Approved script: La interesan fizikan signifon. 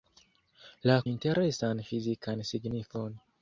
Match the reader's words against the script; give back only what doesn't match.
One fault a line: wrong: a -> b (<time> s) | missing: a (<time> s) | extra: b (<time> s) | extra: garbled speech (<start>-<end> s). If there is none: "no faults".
no faults